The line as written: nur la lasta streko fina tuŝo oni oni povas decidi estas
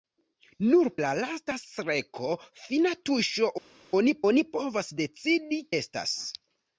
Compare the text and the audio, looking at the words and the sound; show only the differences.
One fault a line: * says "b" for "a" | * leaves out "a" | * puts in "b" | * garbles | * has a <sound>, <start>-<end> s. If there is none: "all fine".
all fine